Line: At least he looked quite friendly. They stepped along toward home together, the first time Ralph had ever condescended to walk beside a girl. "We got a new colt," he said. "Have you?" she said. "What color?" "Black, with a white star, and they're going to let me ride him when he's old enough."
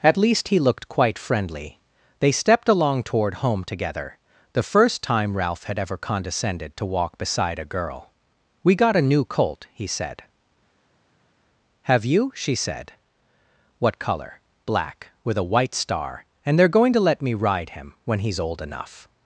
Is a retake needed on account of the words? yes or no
no